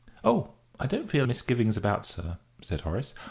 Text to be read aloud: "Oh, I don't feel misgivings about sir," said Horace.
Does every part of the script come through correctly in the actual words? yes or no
yes